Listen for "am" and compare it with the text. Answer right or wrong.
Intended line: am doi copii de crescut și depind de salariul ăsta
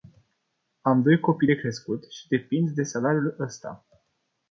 right